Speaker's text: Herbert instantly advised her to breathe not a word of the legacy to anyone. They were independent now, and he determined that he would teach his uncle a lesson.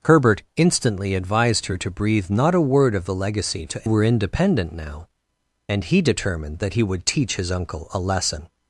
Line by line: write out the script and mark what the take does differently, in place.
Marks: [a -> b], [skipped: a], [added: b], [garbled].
Herbert instantly advised her to breathe not a word of the legacy to [skipped: anyone. They] were independent now, and he determined that he would teach his uncle a lesson.